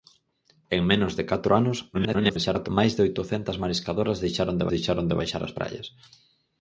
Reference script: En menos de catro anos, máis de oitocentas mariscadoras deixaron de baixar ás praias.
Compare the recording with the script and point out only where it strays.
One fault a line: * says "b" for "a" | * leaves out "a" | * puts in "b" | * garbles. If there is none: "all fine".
* garbles
* puts in "deixaron de"